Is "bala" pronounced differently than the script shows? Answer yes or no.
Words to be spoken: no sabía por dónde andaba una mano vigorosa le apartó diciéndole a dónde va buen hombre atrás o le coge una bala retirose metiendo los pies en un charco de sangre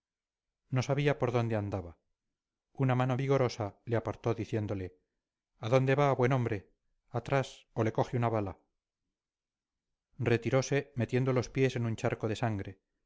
no